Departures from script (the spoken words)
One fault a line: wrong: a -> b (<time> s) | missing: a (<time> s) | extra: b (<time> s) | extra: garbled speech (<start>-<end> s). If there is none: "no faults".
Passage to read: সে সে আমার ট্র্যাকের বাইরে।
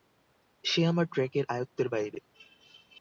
missing: সে (0.8 s)
extra: আয়ত্তের (1.5 s)